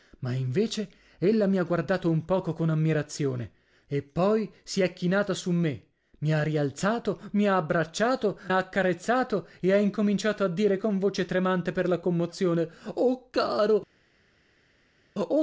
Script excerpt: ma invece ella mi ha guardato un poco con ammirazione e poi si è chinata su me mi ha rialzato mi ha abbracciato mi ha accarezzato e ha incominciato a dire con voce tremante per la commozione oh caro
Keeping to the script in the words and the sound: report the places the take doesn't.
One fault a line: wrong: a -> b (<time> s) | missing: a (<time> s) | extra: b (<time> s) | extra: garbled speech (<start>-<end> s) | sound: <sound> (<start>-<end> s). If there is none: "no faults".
missing: mi (8.4 s)